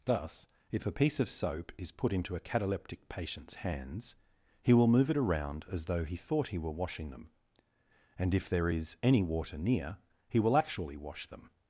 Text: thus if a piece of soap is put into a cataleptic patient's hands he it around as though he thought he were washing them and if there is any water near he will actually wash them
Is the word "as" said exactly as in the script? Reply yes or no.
yes